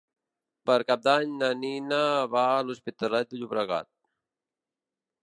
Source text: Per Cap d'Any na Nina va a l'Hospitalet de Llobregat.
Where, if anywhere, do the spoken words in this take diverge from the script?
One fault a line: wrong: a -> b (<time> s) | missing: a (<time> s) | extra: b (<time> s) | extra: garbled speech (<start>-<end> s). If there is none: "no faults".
no faults